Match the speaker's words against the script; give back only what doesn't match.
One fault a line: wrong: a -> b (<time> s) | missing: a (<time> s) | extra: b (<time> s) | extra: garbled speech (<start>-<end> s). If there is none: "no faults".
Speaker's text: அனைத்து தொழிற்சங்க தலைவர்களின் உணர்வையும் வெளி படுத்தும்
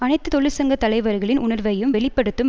no faults